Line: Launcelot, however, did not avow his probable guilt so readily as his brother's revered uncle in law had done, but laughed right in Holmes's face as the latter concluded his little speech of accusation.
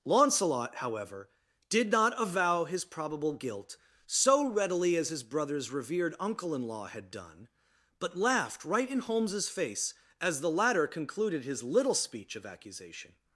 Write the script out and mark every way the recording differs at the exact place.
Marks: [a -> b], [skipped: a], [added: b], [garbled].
Launcelot, however, did not avow his probable guilt so readily as his brother's revered uncle in law had done, but laughed right in Holmes's face as the latter concluded his little speech of accusation.